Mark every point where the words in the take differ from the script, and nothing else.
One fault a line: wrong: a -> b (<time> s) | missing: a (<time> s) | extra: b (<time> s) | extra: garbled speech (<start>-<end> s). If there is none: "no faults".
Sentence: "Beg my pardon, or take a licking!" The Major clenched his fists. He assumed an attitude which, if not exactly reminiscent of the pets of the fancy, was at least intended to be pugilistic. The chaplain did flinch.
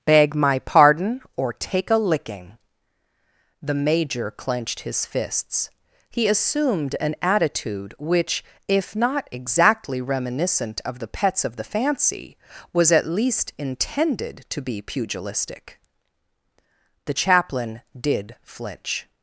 no faults